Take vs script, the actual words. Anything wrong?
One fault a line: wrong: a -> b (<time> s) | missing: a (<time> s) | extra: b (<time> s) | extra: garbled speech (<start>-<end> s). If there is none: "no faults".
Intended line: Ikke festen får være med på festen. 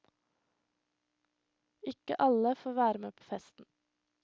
wrong: festen -> alle (2.3 s)